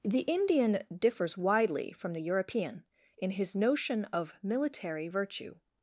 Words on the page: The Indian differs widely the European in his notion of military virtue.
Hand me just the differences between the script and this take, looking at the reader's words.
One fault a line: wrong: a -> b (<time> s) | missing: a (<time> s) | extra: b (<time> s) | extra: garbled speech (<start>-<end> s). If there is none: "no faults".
extra: from (1.9 s)